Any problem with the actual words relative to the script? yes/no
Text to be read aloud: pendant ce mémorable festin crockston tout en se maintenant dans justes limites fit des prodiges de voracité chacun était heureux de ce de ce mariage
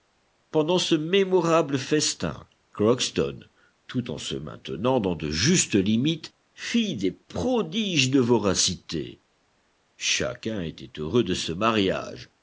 yes